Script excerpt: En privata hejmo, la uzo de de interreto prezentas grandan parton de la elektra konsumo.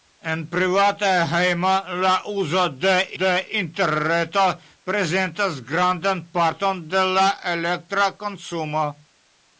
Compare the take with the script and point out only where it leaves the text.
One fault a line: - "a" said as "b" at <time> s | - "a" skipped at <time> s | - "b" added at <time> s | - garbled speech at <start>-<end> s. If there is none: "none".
none